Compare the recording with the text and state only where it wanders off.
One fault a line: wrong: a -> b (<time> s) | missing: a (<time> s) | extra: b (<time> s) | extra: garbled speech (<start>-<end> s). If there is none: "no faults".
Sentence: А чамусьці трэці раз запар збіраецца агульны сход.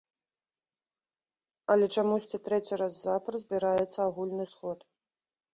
wrong: А -> Але (1.8 s)